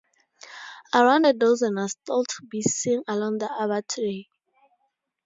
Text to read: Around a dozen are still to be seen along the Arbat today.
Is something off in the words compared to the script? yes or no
no